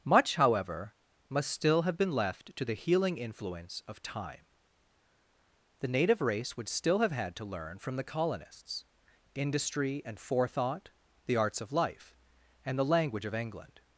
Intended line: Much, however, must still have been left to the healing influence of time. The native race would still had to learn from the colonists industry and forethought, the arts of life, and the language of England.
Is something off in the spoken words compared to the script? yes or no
yes